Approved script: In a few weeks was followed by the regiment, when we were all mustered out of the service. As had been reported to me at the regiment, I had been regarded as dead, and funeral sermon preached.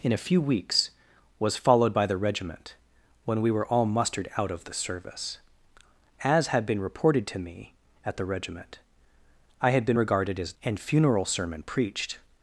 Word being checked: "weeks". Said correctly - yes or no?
yes